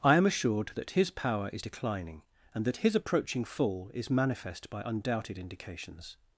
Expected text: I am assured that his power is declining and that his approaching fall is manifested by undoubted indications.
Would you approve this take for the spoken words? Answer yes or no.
no